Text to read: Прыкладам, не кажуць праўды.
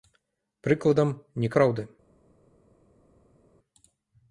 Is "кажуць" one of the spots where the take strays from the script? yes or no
yes